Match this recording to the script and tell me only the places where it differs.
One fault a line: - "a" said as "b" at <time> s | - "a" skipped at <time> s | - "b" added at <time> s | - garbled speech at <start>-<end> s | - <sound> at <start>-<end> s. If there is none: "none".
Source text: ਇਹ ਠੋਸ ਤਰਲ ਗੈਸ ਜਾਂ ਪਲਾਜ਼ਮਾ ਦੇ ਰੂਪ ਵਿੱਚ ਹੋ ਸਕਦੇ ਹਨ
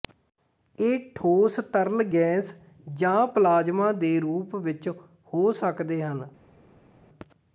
none